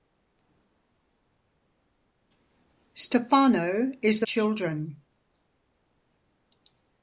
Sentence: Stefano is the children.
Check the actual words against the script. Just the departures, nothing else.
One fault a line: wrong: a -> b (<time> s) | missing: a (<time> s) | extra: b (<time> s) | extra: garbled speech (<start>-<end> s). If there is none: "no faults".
no faults